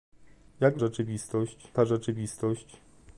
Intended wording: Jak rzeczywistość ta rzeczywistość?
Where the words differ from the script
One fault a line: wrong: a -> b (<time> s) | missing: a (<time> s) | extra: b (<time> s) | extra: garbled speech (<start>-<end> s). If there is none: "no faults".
no faults